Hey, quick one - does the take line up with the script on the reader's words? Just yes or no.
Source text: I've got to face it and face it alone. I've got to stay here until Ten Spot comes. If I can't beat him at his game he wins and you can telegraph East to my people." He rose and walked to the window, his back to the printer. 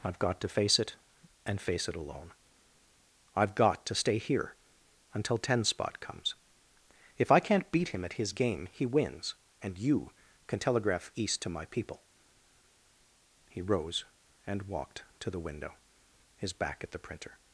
no